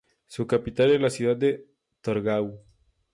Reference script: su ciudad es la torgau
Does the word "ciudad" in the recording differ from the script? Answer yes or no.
yes